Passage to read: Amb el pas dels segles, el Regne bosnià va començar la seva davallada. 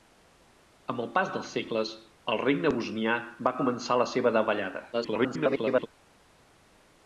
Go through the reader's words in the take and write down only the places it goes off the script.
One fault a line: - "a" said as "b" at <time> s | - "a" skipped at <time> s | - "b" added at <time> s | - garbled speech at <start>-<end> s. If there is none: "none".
- garbled speech at 4.9-5.9 s